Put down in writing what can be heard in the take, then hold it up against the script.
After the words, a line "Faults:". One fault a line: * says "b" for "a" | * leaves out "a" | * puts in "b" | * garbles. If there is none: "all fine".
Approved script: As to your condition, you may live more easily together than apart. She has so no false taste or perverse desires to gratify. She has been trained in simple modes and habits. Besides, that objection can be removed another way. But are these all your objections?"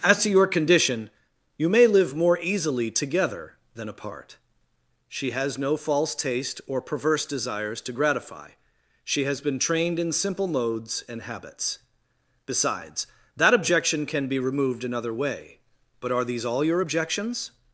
As to your condition, you may live more easily together than apart. She has no false taste or perverse desires to gratify. She has been trained in simple modes and habits. Besides, that objection can be removed another way. But are these all your objections?"
Faults:
* leaves out "so"